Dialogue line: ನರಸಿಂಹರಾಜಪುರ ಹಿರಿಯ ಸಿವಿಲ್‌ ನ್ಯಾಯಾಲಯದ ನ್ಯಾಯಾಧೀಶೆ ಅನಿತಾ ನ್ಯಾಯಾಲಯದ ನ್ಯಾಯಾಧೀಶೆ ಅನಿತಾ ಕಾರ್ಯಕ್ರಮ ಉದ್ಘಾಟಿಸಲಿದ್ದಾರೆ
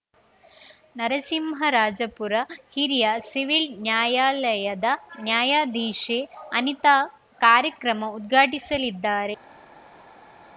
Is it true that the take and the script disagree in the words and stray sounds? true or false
true